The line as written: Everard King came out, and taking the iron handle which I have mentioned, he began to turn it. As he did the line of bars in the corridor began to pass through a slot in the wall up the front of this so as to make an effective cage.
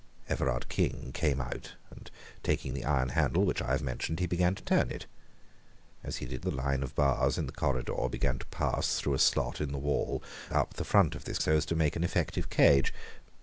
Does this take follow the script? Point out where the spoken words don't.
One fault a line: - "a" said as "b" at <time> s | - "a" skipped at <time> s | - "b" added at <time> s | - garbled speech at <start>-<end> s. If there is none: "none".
none